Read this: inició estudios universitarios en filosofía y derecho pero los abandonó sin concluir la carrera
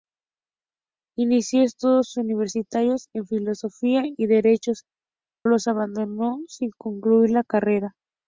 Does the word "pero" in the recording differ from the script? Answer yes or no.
yes